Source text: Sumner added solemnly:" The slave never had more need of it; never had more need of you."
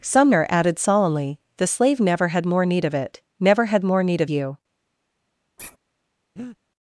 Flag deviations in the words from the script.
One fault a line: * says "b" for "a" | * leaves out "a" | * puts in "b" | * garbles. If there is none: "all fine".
all fine